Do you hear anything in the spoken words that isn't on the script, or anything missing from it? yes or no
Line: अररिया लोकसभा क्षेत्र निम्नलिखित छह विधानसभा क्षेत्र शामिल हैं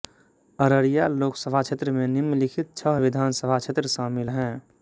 yes